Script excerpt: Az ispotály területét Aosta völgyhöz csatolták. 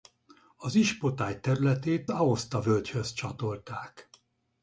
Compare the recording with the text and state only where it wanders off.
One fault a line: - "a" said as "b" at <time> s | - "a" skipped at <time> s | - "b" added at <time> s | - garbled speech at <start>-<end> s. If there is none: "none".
none